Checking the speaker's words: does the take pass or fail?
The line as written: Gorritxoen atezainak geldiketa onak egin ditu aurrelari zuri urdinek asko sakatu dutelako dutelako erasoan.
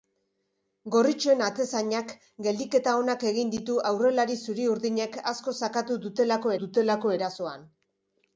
pass